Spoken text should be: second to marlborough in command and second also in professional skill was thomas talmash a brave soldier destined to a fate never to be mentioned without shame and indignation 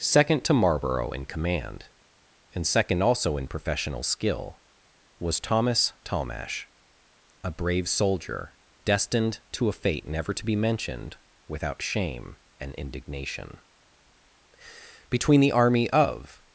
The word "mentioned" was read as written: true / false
true